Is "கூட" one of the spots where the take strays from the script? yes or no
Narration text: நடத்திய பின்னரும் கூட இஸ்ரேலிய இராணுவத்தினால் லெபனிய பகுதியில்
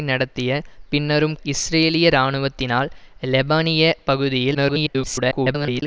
yes